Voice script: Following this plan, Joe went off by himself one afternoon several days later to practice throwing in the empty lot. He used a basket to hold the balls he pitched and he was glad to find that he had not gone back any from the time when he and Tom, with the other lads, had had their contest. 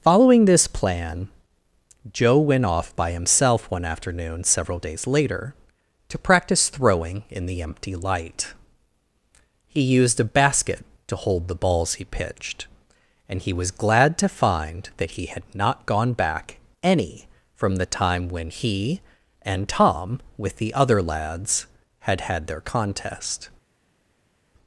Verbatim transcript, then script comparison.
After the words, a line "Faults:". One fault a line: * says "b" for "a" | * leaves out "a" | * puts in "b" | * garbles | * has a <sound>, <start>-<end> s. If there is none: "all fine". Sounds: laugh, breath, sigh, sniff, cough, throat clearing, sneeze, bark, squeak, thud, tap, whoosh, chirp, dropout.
Following this plan, Joe went off by himself one afternoon several days later to practice throwing in the empty light. He used a basket to hold the balls he pitched and he was glad to find that he had not gone back any from the time when he and Tom, with the other lads, had had their contest.
Faults:
* says "light" for "lot"